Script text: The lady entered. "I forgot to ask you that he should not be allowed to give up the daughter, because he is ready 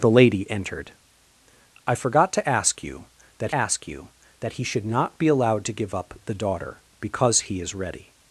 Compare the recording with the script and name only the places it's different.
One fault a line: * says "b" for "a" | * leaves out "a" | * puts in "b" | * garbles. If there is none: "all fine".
* puts in "ask you that"